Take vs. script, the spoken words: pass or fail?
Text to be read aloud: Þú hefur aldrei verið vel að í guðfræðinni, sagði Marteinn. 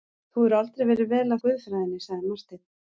pass